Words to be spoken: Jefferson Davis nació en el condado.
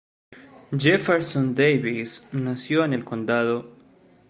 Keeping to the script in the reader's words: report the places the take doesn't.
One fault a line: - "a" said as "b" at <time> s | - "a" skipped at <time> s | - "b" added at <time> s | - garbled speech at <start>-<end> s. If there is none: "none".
none